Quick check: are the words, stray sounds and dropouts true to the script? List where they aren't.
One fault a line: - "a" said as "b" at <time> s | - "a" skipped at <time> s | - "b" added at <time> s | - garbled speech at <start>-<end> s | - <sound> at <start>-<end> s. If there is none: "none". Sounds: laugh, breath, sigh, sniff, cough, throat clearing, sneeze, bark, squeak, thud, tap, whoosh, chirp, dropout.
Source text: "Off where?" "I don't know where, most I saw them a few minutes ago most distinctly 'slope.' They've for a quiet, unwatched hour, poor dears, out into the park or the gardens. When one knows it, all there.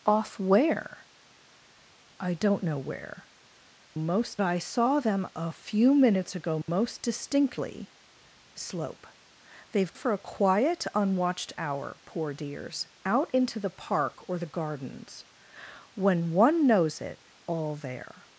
- dropout at 6.6-6.7 s